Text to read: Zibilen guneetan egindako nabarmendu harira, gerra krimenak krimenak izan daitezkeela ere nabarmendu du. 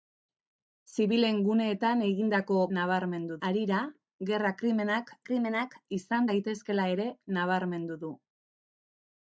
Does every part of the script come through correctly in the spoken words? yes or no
yes